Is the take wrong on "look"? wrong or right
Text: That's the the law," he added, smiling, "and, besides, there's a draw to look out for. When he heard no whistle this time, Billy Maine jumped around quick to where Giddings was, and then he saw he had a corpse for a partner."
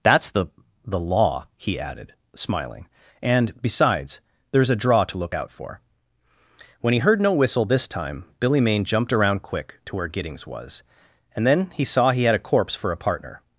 right